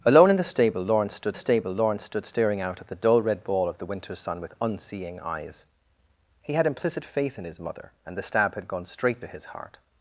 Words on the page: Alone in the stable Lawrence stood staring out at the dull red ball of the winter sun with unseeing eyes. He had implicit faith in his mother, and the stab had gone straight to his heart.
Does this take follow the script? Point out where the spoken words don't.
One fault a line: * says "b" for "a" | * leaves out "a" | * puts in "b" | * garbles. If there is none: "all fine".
* puts in "stable Lawrence stood"